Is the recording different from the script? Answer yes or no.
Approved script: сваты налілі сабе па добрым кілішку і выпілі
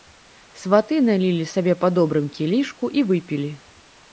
no